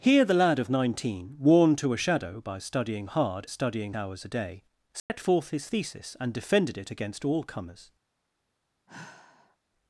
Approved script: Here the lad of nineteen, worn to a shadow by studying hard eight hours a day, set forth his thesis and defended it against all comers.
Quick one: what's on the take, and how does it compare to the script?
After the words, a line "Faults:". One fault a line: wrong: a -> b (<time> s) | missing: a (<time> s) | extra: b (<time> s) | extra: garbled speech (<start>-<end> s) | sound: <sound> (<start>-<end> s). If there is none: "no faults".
Here the lad of nineteen, worn to a shadow by studying hard studying hours a day, set forth his thesis and defended it against all comers.
Faults:
wrong: eight -> studying (3.4 s)
sound: dropout (5.0-5.1 s)
sound: sigh (8.9-9.6 s)